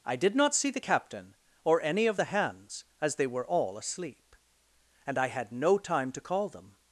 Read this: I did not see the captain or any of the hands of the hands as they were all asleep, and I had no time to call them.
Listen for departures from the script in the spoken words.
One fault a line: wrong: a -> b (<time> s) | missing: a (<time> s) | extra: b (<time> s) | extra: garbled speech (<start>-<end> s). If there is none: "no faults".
missing: of the hands (2.8 s)